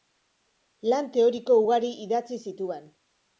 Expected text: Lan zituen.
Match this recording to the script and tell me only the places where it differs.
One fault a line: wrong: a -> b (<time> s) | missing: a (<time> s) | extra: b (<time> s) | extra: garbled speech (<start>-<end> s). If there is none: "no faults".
extra: teoriko ugari idatzi (1.2 s)